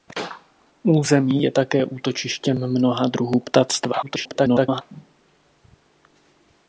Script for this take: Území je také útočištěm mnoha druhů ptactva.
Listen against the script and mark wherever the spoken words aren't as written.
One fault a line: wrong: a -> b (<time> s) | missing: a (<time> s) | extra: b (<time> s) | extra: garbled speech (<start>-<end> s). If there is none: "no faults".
extra: garbled speech (4.0-4.8 s)